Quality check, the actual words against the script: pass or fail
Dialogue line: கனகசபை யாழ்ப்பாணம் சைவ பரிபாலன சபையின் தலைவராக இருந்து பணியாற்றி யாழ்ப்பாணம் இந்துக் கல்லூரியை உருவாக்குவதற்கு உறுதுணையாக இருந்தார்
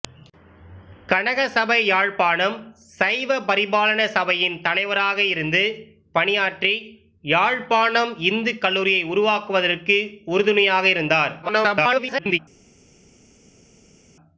fail